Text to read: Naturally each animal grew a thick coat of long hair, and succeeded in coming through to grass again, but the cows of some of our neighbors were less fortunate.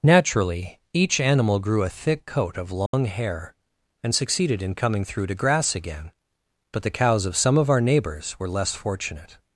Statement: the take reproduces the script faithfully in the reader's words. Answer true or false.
true